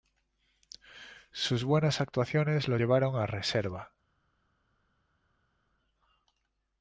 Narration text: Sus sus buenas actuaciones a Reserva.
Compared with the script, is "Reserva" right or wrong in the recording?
right